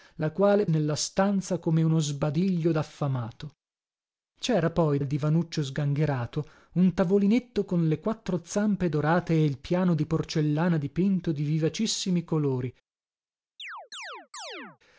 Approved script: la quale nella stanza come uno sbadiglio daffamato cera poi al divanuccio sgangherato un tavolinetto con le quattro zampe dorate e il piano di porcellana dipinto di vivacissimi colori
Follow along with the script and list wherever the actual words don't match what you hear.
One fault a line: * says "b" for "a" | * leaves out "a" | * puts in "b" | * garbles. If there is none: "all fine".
all fine